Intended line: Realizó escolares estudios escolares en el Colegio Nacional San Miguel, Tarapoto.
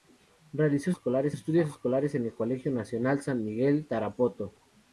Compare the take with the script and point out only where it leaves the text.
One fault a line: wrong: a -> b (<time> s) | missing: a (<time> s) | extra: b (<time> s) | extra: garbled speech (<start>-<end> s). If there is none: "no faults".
no faults